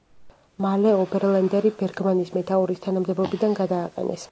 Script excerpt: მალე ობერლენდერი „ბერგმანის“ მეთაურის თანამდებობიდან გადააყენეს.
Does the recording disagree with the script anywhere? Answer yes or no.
no